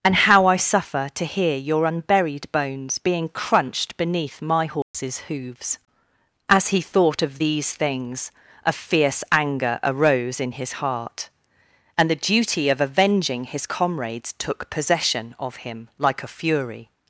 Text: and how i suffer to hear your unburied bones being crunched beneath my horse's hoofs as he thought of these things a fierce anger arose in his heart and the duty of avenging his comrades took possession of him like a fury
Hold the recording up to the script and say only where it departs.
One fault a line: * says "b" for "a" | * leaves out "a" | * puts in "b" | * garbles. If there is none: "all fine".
all fine